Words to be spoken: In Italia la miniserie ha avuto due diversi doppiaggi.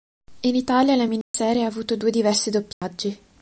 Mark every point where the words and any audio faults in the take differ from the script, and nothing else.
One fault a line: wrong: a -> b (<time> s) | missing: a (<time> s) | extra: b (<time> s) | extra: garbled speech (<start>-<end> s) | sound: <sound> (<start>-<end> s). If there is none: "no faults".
sound: dropout (1.2-1.3 s)
sound: dropout (2.7-2.8 s)